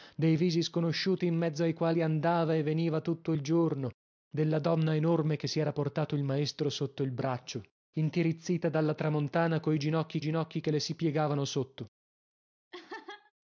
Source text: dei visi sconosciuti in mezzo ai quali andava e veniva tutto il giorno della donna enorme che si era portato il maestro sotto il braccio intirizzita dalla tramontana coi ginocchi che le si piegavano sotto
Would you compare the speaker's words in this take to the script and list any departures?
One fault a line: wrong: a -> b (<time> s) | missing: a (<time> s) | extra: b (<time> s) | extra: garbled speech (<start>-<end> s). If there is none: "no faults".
extra: ginocchi (10.2 s)